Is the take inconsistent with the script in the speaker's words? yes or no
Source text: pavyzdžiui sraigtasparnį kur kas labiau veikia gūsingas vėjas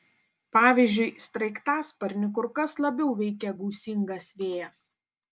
no